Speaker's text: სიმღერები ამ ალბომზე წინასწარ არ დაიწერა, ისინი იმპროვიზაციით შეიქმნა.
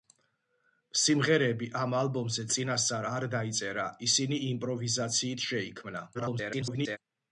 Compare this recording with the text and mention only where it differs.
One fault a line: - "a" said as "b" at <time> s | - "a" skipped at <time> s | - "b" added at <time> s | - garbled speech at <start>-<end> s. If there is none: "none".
- garbled speech at 6.1-7.0 s